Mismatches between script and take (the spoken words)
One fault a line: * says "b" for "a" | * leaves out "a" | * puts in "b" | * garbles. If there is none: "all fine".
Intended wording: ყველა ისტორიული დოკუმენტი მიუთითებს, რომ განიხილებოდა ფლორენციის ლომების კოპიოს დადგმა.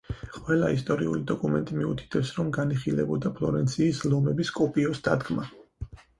all fine